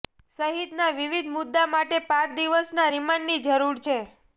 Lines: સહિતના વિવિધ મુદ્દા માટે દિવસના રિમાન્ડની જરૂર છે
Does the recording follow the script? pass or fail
fail